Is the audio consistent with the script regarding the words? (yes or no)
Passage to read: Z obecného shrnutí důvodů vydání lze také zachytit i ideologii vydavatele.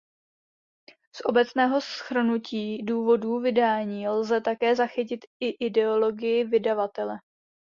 yes